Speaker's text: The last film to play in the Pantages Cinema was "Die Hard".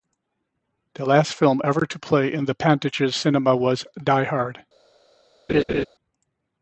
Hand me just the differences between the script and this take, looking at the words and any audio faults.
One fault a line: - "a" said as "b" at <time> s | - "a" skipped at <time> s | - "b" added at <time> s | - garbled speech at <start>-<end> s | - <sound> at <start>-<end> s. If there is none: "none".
- "ever" added at 1.6 s
- laugh at 5.5-5.8 s